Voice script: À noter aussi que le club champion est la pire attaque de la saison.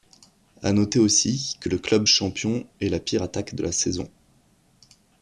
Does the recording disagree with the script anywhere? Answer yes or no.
no